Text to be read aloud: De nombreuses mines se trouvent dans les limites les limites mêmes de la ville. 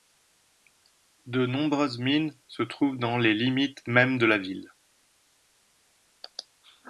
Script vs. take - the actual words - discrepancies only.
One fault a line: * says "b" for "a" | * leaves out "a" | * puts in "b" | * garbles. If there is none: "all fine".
* leaves out "les limites"